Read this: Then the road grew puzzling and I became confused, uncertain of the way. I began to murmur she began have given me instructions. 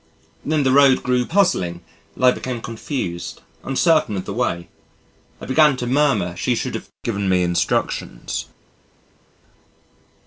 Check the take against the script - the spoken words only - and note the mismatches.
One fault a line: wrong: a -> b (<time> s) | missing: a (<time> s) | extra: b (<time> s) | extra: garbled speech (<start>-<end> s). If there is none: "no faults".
wrong: began -> should (6.5 s)